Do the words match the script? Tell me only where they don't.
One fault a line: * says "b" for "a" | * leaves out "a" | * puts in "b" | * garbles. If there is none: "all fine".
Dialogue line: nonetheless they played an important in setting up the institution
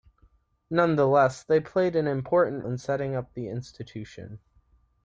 all fine